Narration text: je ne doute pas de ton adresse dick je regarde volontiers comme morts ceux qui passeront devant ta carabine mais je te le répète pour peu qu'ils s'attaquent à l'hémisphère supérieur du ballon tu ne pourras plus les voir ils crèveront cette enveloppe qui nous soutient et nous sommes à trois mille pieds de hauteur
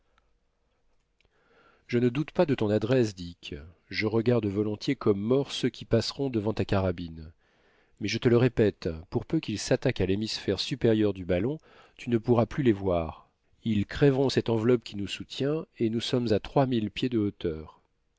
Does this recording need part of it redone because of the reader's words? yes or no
no